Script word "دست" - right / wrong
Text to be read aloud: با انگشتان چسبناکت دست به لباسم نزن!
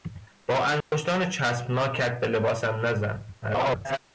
wrong